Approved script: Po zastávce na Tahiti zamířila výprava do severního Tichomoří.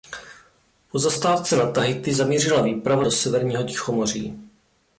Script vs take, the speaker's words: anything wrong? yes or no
no